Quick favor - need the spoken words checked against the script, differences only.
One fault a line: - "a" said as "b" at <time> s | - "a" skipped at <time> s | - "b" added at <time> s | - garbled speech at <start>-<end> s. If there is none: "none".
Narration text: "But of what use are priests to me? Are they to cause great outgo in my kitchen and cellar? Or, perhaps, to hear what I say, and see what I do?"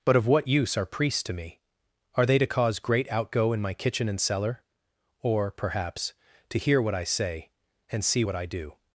none